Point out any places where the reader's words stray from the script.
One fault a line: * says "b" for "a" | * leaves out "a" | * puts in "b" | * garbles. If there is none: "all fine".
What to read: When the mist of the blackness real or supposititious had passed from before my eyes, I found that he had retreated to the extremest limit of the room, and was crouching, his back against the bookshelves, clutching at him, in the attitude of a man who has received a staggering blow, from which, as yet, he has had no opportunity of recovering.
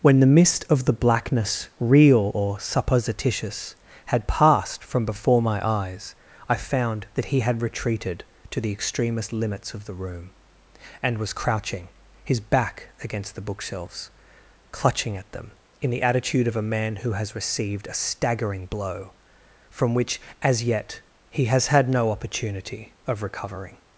* says "limits" for "limit"
* says "them" for "him"